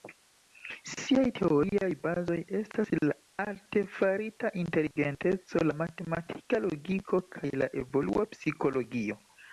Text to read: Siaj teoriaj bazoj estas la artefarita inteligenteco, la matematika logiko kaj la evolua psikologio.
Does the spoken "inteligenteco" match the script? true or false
true